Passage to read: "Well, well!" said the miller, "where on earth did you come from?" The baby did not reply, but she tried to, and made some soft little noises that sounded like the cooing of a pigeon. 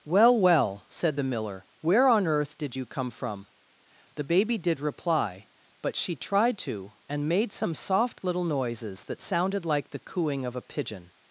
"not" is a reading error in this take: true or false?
true